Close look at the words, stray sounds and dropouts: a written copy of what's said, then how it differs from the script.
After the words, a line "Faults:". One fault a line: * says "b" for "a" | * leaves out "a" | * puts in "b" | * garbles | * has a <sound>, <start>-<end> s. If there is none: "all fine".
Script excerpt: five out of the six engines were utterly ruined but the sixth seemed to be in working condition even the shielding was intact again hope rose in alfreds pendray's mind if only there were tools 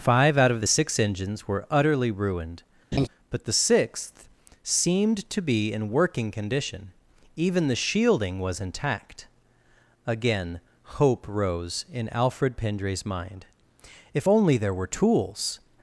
five out of the six engines were utterly ruined but the sixth seemed to be in working condition even the shielding was intact again hope rose in alfred pendray's mind if only there were tools
Faults:
* has a laugh, 2.9-3.1 s
* says "alfred" for "alfreds"